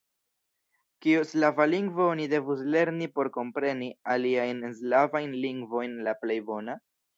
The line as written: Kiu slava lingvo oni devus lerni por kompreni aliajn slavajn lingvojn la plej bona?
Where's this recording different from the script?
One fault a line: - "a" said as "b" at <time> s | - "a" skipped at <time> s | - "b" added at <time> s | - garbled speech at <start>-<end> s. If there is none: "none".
none